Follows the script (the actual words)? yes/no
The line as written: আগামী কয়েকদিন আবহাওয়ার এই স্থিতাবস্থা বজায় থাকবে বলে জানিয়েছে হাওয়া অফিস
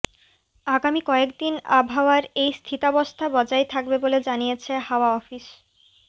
yes